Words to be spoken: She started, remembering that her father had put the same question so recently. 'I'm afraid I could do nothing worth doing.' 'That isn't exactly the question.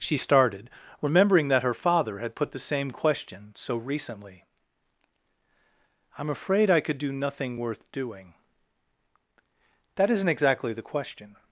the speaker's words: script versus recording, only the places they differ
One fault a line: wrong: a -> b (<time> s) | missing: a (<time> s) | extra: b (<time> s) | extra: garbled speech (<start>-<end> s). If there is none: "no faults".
no faults